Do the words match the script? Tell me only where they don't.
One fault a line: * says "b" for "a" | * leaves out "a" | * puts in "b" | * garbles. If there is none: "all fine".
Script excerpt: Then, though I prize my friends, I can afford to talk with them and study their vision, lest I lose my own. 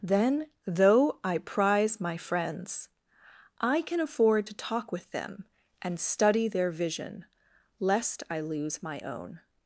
all fine